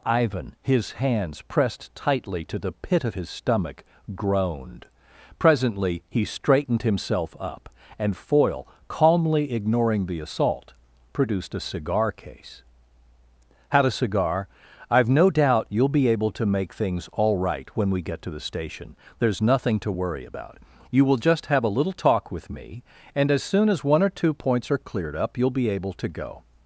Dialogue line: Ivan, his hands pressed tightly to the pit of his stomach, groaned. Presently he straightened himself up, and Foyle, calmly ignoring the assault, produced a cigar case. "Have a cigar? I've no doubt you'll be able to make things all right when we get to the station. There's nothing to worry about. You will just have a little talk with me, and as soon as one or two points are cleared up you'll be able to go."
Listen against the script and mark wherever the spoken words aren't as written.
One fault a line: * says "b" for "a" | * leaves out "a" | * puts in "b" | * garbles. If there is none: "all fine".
* says "Had" for "Have"